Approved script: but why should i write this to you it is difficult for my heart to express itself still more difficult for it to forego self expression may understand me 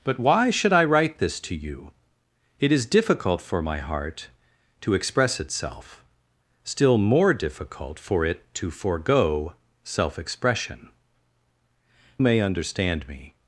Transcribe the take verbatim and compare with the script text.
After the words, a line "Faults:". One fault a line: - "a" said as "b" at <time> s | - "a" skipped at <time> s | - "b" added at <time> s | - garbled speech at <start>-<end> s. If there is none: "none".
but why should i write this to you it is difficult for my heart to express itself still more difficult for it to forego self expression may understand me
Faults:
none